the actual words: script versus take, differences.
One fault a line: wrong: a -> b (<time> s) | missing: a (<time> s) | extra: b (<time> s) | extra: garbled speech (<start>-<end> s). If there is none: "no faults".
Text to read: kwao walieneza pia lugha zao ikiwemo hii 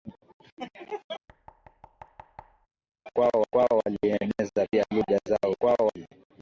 extra: kwao (3.5 s)
wrong: ikiwemo -> kwao (5.6 s)